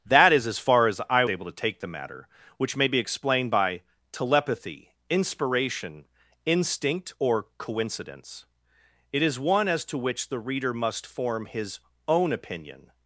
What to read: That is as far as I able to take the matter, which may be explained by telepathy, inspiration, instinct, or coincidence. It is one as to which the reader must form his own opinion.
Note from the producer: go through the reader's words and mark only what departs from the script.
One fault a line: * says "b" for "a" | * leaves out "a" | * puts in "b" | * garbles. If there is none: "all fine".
all fine